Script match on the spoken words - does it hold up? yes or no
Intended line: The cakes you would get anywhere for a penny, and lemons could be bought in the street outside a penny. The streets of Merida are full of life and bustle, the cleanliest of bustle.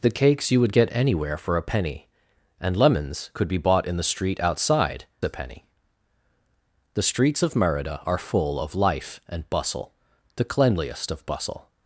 yes